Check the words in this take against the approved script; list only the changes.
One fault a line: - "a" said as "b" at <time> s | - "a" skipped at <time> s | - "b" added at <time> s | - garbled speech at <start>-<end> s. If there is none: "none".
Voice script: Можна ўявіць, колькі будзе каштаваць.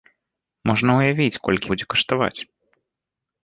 none